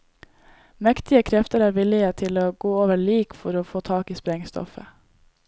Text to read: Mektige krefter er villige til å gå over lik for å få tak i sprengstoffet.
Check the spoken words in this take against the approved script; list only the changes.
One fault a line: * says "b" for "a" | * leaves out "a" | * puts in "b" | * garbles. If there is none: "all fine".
all fine